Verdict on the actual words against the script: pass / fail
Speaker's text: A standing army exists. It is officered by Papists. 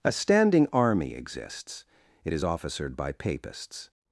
pass